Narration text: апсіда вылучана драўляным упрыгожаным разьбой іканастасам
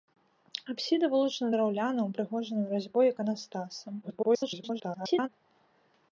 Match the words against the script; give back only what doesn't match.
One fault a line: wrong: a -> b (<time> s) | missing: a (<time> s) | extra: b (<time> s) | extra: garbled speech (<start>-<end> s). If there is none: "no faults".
extra: garbled speech (4.0-5.3 s)